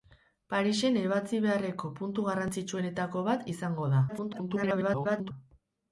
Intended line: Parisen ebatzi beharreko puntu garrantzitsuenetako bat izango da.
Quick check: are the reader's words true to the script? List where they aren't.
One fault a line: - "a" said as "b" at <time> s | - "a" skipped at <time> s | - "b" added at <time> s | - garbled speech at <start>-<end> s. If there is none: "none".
- garbled speech at 4.1-5.3 s